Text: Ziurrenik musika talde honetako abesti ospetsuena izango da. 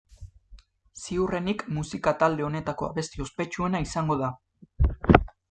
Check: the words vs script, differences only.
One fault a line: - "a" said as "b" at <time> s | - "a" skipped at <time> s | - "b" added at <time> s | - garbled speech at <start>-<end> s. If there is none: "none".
none